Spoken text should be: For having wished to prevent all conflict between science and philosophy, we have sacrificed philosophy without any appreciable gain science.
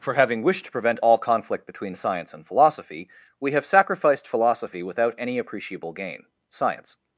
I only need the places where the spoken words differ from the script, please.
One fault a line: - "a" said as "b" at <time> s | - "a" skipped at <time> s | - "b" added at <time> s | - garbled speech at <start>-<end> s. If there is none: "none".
none